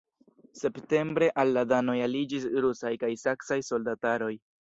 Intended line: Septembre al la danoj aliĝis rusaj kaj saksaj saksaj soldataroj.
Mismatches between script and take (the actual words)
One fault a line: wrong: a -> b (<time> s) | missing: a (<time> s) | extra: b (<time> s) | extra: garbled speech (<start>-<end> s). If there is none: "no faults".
missing: saksaj (3.6 s)